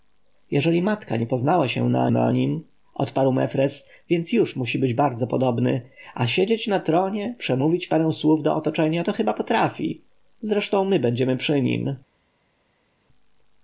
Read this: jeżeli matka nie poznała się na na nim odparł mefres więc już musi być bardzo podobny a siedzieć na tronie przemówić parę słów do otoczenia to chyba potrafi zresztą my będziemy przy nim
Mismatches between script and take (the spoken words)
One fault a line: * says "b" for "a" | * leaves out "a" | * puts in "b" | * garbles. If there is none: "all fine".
all fine